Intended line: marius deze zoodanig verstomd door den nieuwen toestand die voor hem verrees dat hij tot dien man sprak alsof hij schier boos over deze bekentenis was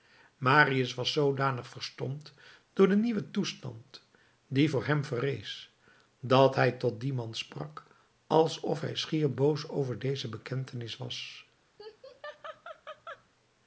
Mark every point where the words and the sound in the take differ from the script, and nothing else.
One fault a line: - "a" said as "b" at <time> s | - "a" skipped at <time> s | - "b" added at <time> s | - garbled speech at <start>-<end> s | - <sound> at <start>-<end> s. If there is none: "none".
- "deze" said as "was" at 0.9 s
- laugh at 11.8-13.3 s